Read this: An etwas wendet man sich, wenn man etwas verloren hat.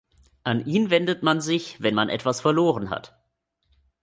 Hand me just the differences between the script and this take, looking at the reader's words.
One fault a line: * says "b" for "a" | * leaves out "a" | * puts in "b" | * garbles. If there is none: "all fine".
* says "ihn" for "etwas"